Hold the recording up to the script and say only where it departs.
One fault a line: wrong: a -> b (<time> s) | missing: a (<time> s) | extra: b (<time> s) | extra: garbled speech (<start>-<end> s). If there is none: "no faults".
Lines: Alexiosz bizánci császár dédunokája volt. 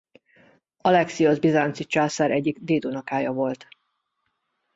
extra: egyik (2.3 s)